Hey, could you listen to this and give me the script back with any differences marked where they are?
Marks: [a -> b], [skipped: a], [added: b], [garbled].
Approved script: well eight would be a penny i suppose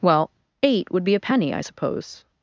well eight would be a penny i suppose